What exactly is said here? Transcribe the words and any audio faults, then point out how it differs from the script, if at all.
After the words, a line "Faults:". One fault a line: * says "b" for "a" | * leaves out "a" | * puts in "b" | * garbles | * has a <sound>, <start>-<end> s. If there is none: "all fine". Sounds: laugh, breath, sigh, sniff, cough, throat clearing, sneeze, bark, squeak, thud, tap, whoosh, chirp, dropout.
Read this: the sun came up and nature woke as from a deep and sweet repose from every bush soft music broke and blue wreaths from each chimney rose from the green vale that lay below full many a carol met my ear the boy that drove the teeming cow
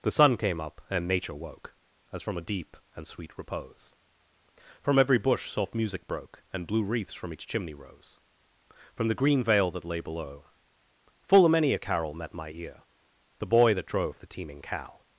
the sun came up and nature woke as from a deep and sweet repose from every bush soft music broke and blue wreaths from each chimney rose from the green vale that lay below full a many a carol met my ear the boy that drove the teeming cow
Faults:
* puts in "a"